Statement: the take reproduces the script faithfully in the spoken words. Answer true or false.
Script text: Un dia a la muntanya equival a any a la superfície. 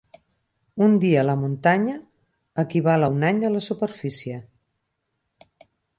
false